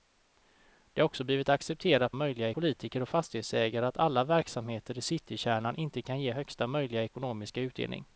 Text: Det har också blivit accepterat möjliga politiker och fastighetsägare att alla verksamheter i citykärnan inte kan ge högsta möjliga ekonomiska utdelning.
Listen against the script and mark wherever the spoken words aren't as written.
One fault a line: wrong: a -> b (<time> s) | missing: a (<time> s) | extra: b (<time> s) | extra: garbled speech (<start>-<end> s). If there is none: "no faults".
no faults